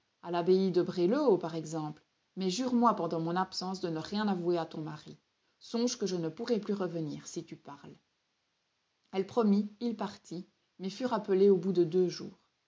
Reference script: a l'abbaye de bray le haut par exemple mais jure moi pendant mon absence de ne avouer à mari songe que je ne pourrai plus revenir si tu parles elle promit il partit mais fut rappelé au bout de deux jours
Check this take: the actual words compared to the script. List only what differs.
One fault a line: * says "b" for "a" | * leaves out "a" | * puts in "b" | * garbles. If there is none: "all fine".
* puts in "rien"
* puts in "ton"